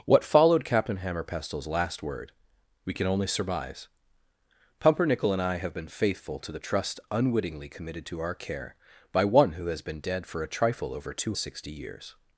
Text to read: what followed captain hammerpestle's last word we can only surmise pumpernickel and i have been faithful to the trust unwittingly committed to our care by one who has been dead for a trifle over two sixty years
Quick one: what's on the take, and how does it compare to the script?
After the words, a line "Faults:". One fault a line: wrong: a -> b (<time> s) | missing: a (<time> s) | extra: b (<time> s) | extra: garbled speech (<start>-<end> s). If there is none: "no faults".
what followed captain hammerpestle's last word we can only surmise pumpernickel and i have been faithful to the trust unwittingly committed to our care by one who has been dead for a trifle over two sixty years
Faults:
no faults